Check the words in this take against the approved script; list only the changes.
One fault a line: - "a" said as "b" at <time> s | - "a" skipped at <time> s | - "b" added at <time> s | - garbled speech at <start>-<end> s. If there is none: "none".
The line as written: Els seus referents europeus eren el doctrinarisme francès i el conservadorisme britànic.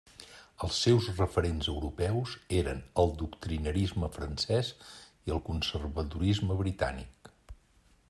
none